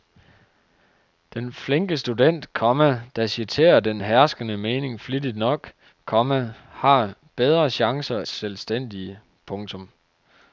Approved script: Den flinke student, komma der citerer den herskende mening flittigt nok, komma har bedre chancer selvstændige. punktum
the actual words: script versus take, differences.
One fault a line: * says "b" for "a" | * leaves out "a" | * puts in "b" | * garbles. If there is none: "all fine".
all fine